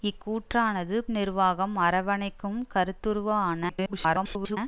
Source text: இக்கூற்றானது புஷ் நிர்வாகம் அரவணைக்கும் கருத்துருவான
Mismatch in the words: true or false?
true